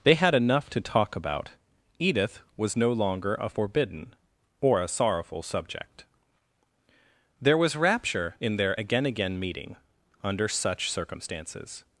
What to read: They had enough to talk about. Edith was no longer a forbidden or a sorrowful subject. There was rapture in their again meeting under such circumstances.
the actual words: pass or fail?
fail